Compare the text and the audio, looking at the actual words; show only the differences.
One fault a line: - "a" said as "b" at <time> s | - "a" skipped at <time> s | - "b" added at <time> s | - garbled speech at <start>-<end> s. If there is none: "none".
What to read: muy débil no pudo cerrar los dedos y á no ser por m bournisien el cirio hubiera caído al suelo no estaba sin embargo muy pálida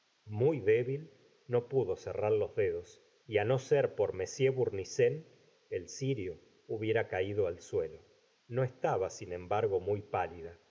none